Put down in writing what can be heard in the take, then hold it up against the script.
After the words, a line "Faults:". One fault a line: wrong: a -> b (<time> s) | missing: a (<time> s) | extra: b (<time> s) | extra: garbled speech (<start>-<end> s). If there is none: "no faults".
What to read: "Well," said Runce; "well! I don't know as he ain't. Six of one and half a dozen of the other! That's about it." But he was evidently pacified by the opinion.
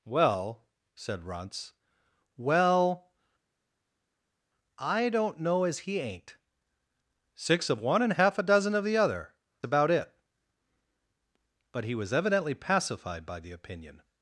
"Well," said Runce; "well! I don't know as he ain't. Six of one and half a dozen of the other! About it." But he was evidently pacified by the opinion.
Faults:
missing: That's (9.3 s)